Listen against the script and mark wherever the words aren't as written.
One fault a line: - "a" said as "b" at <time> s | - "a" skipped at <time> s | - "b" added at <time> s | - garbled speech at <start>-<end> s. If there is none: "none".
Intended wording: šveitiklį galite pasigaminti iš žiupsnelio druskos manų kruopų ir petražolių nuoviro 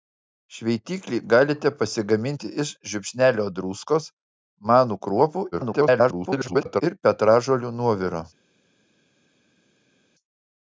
- garbled speech at 5.5-6.8 s